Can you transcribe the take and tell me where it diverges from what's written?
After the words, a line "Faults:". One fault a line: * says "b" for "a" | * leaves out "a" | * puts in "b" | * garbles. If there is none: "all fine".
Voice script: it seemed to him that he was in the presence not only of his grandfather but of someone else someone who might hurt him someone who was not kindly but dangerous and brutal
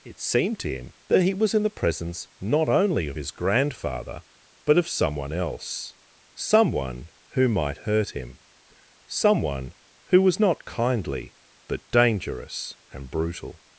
it seemed to him that he was in the presence not only of his grandfather but of someone else someone who might hurt him someone who was not kindly but dangerous and brutal
Faults:
all fine